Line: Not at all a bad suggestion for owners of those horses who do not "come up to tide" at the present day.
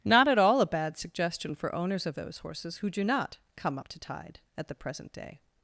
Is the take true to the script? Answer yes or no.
yes